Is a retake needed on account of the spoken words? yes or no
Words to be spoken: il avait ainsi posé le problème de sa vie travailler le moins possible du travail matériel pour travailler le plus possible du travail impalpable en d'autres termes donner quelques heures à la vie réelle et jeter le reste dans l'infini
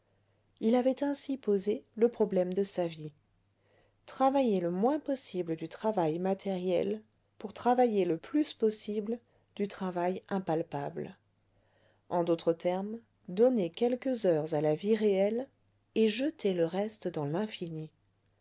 no